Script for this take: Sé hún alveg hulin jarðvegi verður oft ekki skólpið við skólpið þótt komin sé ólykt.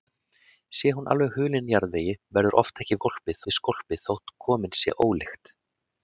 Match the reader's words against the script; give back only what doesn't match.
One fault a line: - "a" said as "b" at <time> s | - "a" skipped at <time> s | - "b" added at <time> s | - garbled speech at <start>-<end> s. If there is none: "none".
none